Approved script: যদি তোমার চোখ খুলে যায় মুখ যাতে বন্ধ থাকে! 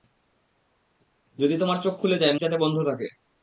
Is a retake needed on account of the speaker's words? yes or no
yes